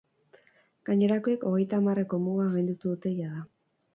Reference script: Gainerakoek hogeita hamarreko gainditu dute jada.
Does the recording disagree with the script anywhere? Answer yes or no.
yes